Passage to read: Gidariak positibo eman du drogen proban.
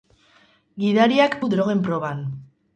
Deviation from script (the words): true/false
true